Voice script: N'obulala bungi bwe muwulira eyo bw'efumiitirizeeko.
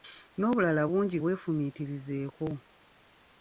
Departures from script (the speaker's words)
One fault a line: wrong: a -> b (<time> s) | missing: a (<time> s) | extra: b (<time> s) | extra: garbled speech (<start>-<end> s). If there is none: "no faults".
missing: bwe muwulira eyo (1.2 s)